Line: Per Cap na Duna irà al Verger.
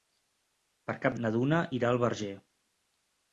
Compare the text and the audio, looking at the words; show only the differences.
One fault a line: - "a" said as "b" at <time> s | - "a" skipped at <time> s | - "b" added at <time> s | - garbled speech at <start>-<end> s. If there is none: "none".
none